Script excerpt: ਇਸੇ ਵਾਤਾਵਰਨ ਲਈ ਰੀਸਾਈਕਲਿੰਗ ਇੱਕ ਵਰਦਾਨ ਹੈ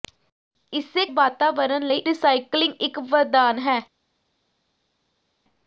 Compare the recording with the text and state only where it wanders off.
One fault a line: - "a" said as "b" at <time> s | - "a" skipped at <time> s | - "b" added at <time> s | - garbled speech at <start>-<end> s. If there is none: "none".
none